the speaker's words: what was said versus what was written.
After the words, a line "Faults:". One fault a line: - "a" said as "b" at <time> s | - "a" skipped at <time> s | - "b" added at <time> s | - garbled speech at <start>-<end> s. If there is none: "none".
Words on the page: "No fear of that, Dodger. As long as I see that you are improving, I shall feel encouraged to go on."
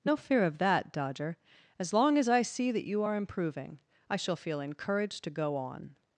"No fear of that, Dodger. As long as I see that you are improving, I shall feel encouraged to go on."
Faults:
none